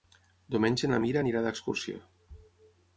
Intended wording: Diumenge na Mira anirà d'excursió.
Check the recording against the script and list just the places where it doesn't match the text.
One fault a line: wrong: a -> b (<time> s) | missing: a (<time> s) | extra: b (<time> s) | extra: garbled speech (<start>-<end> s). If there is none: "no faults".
no faults